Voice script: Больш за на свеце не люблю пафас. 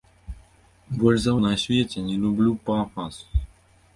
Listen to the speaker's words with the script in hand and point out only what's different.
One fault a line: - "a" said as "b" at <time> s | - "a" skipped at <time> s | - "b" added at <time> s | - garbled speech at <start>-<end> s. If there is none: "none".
none